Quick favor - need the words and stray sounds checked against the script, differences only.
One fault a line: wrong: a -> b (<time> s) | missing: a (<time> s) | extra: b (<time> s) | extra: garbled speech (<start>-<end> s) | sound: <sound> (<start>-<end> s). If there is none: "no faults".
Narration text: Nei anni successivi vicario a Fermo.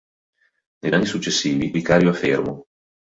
no faults